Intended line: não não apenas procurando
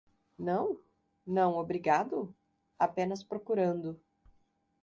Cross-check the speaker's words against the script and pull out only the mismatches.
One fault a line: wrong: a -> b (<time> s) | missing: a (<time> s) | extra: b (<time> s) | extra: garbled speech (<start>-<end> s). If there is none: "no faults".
extra: obrigado (1.6 s)